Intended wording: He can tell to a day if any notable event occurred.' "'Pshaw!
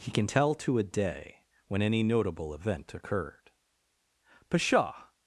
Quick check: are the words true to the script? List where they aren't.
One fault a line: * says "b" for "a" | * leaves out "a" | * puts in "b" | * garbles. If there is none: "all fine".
* says "when" for "if"